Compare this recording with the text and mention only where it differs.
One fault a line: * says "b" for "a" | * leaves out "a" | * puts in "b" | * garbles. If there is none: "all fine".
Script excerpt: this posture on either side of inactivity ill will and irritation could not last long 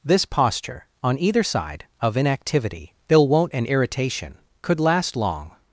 * says "won't" for "will"
* leaves out "not"